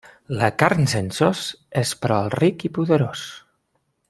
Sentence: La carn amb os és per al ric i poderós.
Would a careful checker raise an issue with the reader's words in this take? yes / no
yes